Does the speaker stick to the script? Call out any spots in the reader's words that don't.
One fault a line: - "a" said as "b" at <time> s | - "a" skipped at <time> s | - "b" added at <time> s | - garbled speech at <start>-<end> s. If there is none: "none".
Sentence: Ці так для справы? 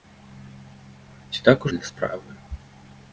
none